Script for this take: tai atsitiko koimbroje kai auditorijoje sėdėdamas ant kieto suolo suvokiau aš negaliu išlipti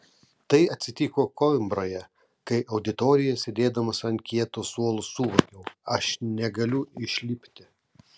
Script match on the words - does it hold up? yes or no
yes